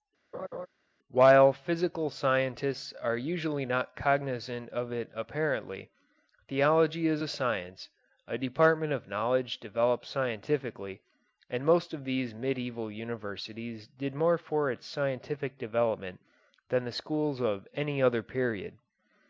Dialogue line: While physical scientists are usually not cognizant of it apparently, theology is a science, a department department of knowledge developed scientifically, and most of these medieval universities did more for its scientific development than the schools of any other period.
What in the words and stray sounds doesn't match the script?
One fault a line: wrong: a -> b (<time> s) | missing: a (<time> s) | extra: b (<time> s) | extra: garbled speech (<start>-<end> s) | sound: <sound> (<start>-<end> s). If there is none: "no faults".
sound: laugh (0.3-0.7 s)
missing: department (8.9 s)